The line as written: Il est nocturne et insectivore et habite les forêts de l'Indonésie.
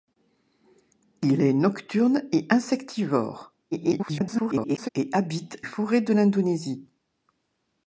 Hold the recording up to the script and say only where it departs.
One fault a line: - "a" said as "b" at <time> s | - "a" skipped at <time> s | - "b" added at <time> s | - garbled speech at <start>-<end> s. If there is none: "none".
- garbled speech at 3.7-4.9 s
- "les" skipped at 5.6 s